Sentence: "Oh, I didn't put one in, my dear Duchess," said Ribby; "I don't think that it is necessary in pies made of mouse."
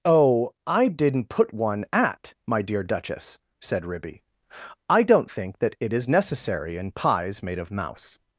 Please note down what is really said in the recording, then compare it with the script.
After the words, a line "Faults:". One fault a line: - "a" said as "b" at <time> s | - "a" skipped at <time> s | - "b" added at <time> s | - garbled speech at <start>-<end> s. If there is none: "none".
"Oh, I didn't put one at, my dear Duchess," said Ribby; "I don't think that it is necessary in pies made of mouse."
Faults:
- "in" said as "at" at 1.9 s